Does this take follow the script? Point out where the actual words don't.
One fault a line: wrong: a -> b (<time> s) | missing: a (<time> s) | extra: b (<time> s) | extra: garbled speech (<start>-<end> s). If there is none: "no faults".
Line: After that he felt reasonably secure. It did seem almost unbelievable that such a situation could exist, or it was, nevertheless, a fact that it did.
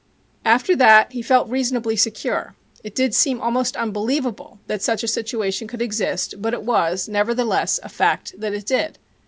wrong: or -> but (6.4 s)